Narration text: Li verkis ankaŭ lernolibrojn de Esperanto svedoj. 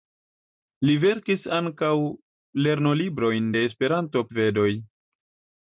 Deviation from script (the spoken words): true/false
false